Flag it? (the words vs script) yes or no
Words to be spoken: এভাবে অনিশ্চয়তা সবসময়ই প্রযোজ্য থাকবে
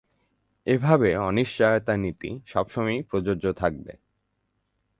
yes